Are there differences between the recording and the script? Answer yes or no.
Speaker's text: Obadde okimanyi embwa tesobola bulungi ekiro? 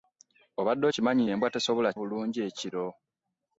no